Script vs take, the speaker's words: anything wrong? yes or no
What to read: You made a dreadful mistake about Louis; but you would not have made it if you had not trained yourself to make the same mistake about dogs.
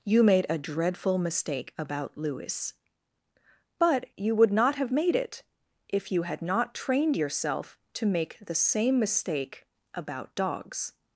no